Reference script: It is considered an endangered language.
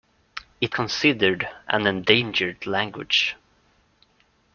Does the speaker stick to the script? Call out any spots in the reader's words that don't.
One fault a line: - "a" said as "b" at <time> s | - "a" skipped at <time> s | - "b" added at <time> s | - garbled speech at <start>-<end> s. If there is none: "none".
- "is" skipped at 0.8 s